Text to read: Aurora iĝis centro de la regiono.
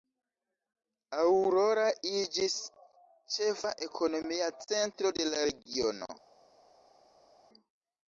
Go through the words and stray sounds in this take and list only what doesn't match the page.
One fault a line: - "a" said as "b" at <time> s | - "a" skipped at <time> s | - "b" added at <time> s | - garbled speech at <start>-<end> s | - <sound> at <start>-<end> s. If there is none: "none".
- "ĉefa ekonomia" added at 3.4 s